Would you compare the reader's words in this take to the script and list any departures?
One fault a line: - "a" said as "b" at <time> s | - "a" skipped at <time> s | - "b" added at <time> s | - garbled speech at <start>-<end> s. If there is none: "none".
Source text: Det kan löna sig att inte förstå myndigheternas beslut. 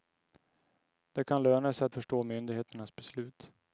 - "inte" skipped at 1.9 s